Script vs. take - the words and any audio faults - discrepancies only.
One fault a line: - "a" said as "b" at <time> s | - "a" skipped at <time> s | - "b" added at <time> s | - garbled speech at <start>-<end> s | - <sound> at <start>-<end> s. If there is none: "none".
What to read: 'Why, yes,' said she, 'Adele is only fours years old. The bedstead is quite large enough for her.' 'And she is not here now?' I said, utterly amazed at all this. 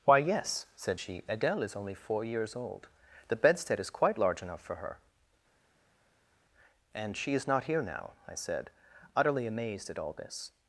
- "fours" said as "four" at 1.9 s